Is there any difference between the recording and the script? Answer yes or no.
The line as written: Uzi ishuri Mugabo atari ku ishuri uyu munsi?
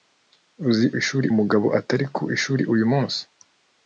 no